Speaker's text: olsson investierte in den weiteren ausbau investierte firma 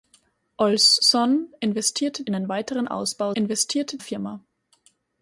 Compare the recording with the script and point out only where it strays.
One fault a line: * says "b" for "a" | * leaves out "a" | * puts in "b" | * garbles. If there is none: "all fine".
all fine